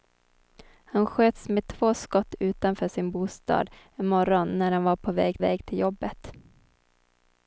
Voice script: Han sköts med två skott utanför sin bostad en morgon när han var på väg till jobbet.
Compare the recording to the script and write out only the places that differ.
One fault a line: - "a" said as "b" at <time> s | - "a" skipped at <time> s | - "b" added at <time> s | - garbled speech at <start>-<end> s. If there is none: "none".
- "väg" added at 5.4 s